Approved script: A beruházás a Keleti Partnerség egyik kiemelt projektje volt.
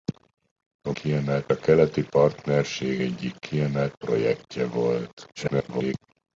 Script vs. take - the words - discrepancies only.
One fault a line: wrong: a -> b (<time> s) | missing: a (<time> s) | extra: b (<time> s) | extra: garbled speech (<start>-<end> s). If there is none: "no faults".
wrong: beruházás -> kiemelt (0.9 s)
extra: garbled speech (5.4-5.9 s)